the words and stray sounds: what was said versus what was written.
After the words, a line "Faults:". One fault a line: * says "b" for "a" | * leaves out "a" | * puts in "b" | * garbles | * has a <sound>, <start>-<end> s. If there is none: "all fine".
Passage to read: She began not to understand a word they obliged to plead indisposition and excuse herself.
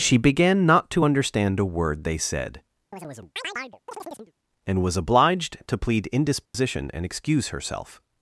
She began not to understand a word they said, and was obliged to plead indisposition and excuse herself.
Faults:
* puts in "said and was"
* has a chirp, 2.9-4.3 s
* has a dropout, 6.5-6.5 s